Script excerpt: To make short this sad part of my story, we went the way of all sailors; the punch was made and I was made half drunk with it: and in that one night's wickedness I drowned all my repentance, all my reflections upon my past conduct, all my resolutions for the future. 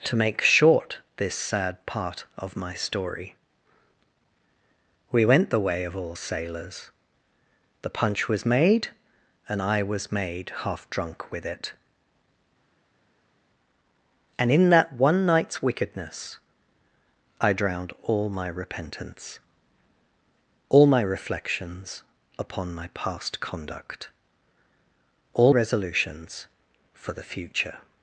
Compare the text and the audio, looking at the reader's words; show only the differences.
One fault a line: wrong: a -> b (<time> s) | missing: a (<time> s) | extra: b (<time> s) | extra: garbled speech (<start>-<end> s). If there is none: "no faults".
missing: my (25.6 s)